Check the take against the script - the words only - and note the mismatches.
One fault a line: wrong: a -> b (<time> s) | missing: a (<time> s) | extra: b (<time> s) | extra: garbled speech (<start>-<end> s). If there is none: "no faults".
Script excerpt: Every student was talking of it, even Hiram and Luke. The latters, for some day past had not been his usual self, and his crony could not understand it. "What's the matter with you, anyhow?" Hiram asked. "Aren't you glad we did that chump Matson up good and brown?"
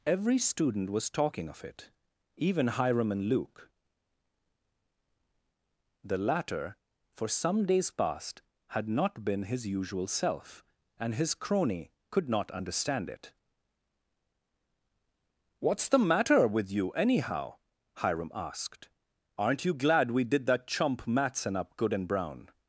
wrong: latters -> latter (6.2 s)
wrong: day -> days (7.7 s)